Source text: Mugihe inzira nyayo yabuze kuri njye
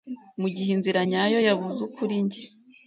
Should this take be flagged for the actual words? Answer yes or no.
no